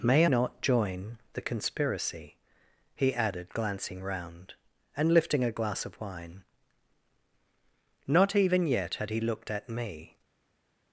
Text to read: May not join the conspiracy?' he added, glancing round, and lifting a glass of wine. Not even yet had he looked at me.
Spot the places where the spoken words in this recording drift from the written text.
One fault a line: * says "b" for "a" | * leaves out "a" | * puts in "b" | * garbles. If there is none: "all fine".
all fine